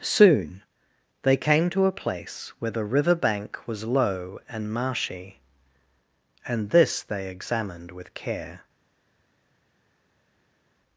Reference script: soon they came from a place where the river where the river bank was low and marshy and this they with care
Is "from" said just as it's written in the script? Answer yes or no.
no